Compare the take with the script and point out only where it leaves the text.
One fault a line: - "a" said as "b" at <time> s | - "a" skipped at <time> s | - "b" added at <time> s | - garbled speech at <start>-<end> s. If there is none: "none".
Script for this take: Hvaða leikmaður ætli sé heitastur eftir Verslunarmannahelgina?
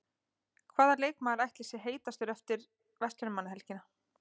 none